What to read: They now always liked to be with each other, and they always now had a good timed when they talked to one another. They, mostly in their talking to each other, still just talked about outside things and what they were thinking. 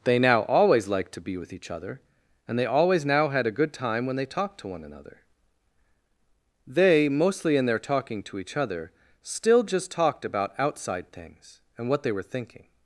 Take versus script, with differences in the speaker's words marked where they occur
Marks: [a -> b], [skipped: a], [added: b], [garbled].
They now always liked to be with each other, and they always now had a good [timed -> time] when they talked to one another. They, mostly in their talking to each other, still just talked about outside things and what they were thinking.